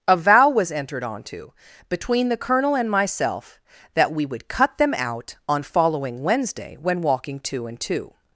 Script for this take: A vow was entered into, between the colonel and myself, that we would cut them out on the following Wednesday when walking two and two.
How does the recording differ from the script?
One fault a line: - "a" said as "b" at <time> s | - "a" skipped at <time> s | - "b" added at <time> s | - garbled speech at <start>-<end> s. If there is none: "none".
- "into" said as "onto" at 1.0 s
- "the" skipped at 5.6 s